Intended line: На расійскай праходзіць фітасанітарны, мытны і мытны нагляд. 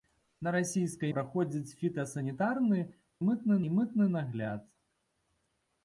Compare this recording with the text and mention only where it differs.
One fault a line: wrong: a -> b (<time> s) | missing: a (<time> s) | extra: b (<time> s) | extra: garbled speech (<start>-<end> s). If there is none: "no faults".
no faults